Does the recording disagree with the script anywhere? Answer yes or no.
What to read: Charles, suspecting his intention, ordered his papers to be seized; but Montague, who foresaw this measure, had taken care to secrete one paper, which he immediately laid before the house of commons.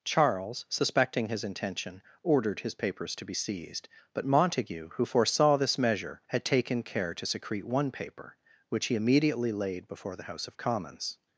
no